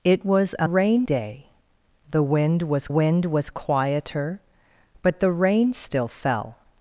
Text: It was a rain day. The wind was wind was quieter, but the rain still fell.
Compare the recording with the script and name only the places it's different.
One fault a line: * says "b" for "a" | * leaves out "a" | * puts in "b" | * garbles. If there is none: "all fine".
all fine